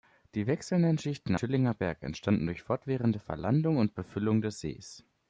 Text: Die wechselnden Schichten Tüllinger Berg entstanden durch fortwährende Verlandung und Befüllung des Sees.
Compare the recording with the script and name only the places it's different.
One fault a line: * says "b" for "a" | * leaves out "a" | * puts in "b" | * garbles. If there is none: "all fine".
all fine